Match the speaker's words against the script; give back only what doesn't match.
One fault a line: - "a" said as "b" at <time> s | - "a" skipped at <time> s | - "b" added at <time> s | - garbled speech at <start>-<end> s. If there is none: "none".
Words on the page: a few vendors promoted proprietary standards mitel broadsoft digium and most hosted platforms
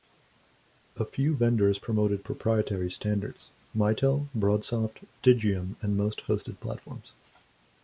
none